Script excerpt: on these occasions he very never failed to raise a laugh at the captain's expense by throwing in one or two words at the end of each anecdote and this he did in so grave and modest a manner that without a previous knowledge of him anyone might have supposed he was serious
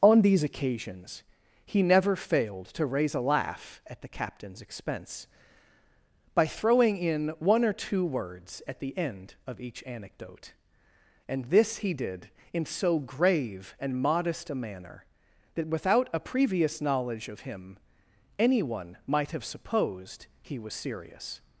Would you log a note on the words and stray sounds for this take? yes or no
yes